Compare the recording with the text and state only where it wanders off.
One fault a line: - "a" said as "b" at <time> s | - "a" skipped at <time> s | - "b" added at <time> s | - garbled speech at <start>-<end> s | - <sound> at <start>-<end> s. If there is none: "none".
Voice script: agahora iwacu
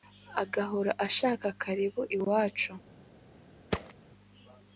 - "ashaka karibu" added at 1.1 s
- thud at 3.7-3.9 s